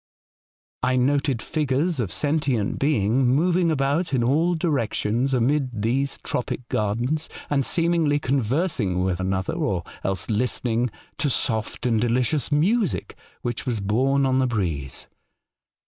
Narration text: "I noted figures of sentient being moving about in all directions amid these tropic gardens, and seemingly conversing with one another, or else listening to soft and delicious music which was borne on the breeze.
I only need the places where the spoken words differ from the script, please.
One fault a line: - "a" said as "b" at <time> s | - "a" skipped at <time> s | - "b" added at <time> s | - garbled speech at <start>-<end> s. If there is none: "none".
- "one" skipped at 9.2 s